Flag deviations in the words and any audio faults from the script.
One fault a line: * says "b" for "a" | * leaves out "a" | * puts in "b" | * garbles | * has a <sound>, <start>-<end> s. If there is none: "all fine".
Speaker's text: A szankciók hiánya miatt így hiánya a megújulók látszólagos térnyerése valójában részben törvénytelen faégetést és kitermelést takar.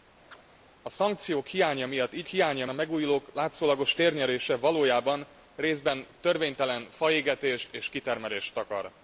* has a chirp, 0.3-0.4 s